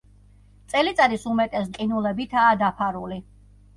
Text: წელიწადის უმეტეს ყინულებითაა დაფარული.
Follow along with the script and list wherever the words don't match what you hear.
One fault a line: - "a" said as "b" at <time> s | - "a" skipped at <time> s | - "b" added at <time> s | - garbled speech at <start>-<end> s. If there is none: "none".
none